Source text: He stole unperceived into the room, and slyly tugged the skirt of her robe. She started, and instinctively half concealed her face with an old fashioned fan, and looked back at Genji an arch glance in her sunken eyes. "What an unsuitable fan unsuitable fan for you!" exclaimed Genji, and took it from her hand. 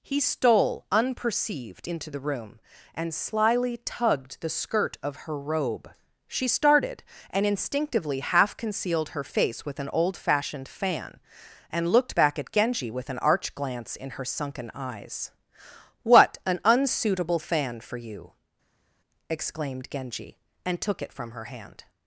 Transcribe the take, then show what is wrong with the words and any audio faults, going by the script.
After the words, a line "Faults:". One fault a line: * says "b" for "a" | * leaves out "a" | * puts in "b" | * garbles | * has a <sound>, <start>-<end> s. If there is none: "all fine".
He stole unperceived into the room, and slyly tugged the skirt of her robe. She started, and instinctively half concealed her face with an old fashioned fan, and looked back at Genji with an arch glance in her sunken eyes. "What an unsuitable fan for you!" exclaimed Genji, and took it from her hand.
Faults:
* puts in "with"
* leaves out "unsuitable fan"